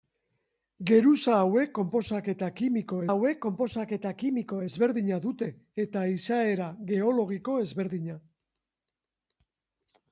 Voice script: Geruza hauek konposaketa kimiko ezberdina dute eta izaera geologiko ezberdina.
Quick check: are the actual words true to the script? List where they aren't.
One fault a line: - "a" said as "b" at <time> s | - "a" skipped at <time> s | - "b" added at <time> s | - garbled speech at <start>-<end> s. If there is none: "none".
- "hauek konposaketa kimiko" added at 3.1 s